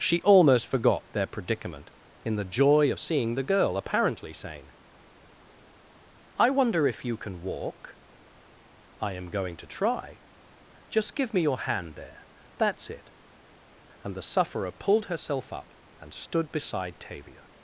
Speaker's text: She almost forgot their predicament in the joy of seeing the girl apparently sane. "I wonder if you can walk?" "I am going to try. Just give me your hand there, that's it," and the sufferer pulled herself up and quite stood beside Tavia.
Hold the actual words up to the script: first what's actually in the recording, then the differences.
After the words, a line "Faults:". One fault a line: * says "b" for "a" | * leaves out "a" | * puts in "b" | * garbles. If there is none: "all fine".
She almost forgot their predicament in the joy of seeing the girl apparently sane. "I wonder if you can walk?" "I am going to try. Just give me your hand there, that's it," and the sufferer pulled herself up and stood beside Tavia.
Faults:
* leaves out "quite"